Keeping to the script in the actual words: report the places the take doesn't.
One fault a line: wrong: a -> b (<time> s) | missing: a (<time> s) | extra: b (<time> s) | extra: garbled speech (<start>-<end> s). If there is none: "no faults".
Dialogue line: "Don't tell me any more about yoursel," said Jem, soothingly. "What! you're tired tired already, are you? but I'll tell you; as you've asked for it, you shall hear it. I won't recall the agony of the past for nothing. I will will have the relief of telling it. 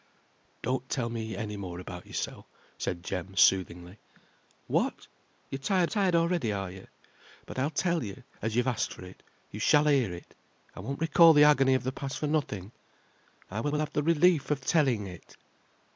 no faults